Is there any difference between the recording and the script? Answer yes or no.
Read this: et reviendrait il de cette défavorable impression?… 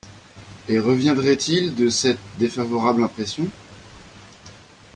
no